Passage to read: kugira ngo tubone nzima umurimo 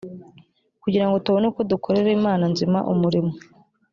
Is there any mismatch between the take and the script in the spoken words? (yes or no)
yes